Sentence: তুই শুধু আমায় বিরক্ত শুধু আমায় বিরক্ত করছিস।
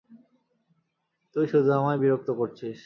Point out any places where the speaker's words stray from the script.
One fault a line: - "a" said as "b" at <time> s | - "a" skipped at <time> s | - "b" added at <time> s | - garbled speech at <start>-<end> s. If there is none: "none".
- "শুধু আমায় বিরক্ত" skipped at 2.3 s